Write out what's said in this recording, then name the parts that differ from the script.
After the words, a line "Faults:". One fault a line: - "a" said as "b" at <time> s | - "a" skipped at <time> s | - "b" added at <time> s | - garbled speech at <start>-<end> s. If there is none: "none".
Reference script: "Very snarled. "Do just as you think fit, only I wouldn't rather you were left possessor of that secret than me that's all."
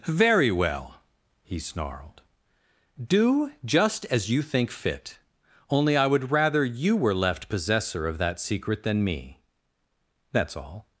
"Very well," he snarled. "Do just as you think fit, only I would rather you were left possessor of that secret than me that's all."
Faults:
- "well he" added at 0.5 s
- "wouldn't" said as "would" at 6.1 s